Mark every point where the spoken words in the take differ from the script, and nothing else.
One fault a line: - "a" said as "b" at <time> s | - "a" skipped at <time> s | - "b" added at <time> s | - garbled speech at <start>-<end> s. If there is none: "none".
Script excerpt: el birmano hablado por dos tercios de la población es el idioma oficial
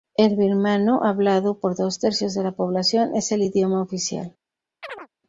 none